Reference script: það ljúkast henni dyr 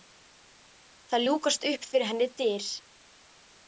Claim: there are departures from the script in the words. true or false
true